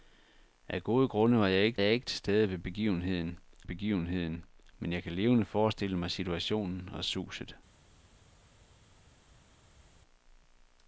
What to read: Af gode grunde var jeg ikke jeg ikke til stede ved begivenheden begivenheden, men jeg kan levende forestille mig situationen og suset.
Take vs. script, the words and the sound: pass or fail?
pass